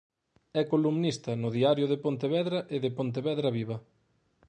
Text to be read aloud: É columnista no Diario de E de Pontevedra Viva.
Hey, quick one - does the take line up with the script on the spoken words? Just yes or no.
no